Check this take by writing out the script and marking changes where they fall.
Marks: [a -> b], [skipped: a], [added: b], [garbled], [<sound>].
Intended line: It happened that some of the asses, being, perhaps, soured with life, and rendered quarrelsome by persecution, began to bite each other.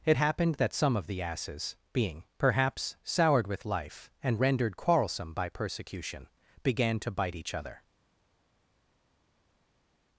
It happened that some of the asses, being, perhaps, soured with life, and rendered quarrelsome by persecution, began to bite each other.